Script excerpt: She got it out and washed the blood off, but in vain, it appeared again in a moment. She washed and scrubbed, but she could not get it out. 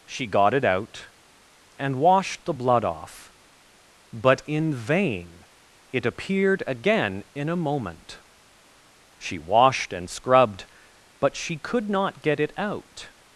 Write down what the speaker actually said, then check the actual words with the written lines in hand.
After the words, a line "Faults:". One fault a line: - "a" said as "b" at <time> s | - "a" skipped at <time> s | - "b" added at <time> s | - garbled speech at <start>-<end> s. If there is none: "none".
She got it out and washed the blood off, but in vain, it appeared again in a moment. She washed and scrubbed, but she could not get it out.
Faults:
none